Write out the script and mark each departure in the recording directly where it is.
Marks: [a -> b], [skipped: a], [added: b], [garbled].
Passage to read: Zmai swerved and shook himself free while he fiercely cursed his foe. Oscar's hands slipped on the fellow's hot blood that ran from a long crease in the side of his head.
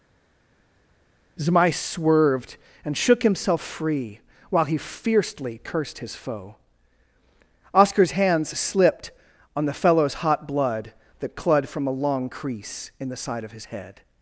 Zmai swerved and shook himself free while he fiercely cursed his foe. Oscar's hands slipped on the fellow's hot blood that [ran -> clud] from a long crease in the side of his head.